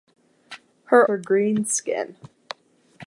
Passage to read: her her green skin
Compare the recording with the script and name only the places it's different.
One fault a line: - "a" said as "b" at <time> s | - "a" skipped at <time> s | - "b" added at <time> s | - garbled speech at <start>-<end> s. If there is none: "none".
none